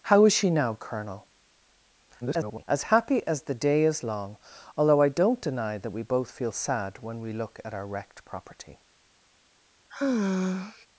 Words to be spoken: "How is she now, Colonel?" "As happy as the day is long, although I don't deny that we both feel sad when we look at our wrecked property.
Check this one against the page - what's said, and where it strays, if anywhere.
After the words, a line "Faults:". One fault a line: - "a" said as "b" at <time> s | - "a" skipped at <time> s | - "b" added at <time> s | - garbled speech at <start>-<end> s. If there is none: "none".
"How is she now, Colonel?" [garbled] "As happy as the day is long, although I don't deny that we both feel sad when we look at our wrecked property.
Faults:
- garbled speech at 2.2-2.7 s